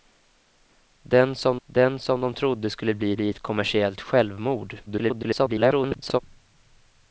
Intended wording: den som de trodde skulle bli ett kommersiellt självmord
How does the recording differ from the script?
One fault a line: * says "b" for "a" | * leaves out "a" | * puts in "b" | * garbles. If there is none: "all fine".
* puts in "den som"
* puts in "bli"
* garbles